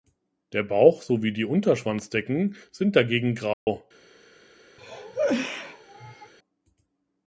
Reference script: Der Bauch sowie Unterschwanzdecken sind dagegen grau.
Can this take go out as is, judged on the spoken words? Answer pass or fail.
fail